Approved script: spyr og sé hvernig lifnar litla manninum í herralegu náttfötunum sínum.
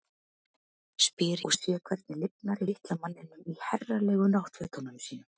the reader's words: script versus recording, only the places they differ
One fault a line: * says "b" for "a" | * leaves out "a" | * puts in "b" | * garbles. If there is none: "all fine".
all fine